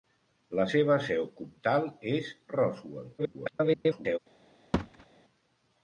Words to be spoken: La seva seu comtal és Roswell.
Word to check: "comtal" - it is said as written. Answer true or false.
true